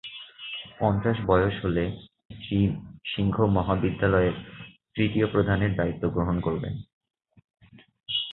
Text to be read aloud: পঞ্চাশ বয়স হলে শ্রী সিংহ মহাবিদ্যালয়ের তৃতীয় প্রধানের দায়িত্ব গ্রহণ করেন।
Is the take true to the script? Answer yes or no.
yes